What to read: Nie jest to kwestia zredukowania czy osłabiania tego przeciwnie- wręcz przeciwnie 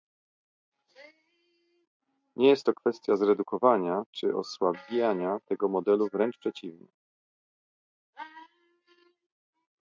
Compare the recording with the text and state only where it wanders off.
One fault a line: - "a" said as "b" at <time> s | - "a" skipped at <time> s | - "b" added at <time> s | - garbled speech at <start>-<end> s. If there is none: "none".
- "przeciwnie" said as "modelu" at 5.7 s